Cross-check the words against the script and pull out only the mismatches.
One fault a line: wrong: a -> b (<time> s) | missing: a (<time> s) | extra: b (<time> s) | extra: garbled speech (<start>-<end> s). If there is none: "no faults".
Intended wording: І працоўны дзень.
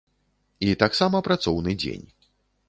extra: таксама (0.8 s)